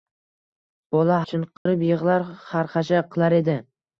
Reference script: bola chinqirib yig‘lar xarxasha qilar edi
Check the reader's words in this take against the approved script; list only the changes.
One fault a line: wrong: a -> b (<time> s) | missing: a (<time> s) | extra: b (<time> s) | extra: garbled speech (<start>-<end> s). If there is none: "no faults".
no faults